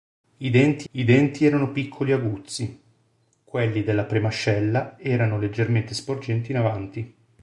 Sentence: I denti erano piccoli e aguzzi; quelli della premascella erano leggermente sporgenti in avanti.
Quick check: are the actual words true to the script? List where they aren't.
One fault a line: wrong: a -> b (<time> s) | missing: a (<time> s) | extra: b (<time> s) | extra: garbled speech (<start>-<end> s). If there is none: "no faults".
extra: I denti (0.9 s)